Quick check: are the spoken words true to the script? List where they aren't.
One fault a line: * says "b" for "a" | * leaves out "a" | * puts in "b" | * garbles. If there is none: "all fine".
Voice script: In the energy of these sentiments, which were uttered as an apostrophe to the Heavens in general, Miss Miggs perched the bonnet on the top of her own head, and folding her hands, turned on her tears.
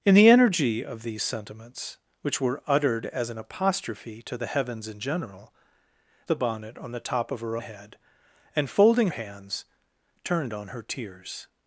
* leaves out "Miss Miggs perched"
* leaves out "own"
* leaves out "her"